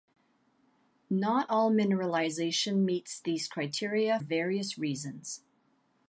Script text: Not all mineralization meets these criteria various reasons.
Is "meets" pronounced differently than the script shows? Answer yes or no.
no